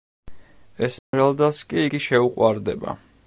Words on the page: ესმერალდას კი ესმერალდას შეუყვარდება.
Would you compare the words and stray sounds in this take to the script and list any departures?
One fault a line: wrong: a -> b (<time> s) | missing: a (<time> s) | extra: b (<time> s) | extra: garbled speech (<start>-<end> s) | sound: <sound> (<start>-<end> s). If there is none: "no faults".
sound: dropout (1.0-1.1 s)
wrong: ესმერალდას -> იგი (1.9 s)